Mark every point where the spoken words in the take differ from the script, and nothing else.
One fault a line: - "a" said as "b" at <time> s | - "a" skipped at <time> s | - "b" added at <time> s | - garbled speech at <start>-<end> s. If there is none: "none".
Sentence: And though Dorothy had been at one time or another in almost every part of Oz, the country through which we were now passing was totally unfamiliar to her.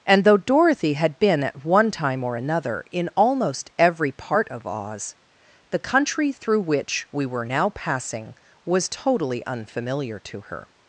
none